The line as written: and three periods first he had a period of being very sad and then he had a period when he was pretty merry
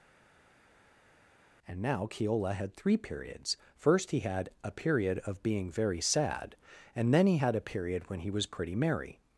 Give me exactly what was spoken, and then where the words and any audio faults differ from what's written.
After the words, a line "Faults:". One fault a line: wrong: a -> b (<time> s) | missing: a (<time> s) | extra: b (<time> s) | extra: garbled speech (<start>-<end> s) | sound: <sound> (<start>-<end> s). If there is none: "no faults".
and now keola had three periods first he had a period of being very sad and then he had a period when he was pretty merry
Faults:
extra: now keola had (1.8 s)